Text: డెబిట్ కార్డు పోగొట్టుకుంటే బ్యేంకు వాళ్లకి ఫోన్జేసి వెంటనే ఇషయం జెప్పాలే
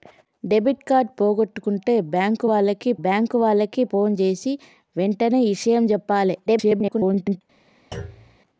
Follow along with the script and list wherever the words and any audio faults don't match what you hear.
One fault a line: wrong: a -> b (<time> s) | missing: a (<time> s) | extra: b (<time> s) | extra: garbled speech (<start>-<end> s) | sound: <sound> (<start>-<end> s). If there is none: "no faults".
extra: బ్యేంకు వాళ్లకి (3.0 s)
extra: garbled speech (6.5-7.4 s)
sound: thud (7.9-8.4 s)